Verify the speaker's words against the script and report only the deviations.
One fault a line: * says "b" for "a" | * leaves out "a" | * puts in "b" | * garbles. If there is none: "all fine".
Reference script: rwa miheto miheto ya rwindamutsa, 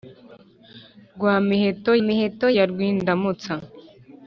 all fine